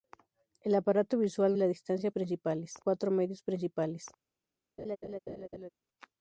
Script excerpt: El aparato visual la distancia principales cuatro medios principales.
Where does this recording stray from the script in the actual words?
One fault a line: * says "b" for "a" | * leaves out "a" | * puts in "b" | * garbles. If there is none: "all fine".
all fine